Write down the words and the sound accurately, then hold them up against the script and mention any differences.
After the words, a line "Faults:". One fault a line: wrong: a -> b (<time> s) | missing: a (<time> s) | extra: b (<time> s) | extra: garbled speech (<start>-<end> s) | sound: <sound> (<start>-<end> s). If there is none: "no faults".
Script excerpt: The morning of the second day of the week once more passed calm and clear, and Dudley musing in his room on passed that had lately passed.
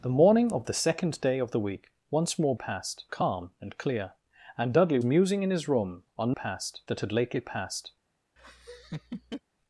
The morning of the second day of the week once more passed calm and clear, and Dudley musing in his room on passed that had lately passed.
Faults:
sound: laugh (8.4-9.4 s)